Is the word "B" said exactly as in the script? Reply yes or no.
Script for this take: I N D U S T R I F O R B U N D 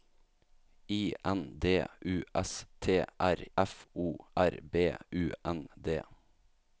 yes